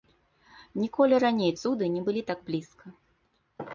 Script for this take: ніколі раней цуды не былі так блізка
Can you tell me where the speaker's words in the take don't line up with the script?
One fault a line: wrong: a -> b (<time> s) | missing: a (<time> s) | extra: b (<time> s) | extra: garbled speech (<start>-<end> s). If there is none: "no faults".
no faults